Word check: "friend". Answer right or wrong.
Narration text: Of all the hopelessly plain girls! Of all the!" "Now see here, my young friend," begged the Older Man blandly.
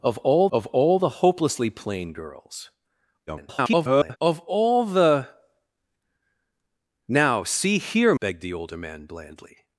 wrong